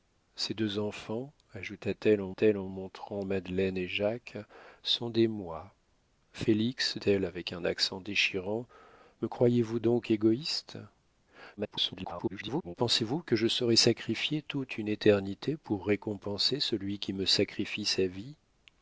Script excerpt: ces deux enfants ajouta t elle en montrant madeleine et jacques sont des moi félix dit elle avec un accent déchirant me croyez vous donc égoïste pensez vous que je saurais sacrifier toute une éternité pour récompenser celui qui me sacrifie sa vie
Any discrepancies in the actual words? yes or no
yes